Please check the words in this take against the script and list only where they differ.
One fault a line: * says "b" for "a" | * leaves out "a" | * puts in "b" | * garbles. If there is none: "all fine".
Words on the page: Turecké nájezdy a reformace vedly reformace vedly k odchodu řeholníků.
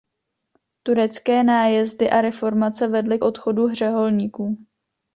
* leaves out "reformace vedly"